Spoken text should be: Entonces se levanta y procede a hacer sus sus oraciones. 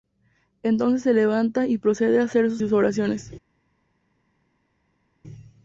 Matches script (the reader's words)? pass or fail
pass